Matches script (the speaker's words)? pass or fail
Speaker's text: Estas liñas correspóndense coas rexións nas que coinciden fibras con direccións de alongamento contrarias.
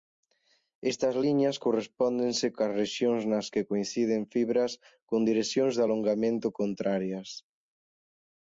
pass